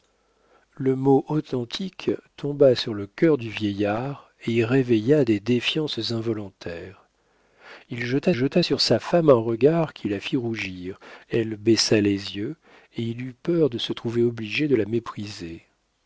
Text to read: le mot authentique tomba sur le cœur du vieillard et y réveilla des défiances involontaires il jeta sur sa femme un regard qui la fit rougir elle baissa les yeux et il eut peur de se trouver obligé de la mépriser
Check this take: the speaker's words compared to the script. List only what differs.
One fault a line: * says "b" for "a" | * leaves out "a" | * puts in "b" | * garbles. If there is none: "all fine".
* puts in "jeta"